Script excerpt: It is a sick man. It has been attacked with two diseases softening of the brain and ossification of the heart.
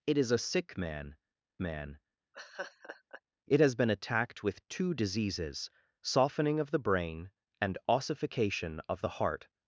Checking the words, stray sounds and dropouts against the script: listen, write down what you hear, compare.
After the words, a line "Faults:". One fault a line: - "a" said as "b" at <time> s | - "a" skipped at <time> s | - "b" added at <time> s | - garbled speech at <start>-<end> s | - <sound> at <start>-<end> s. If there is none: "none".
It is a sick man man. It has been attacked with two diseases softening of the brain and ossification of the heart.
Faults:
- "man" added at 1.6 s
- laugh at 2.3-3.2 s